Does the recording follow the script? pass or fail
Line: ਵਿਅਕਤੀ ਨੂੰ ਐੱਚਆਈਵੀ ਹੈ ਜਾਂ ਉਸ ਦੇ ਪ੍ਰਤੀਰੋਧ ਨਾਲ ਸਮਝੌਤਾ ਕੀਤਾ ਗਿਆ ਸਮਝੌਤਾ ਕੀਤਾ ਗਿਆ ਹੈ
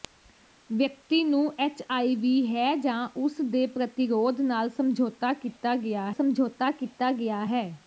pass